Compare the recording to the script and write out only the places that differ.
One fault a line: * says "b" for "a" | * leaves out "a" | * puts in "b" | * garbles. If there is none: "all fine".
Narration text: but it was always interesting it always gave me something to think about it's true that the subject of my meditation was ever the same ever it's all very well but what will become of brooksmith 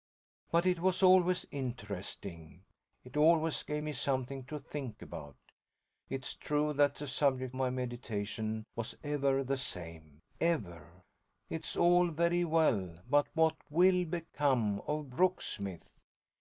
* leaves out "of"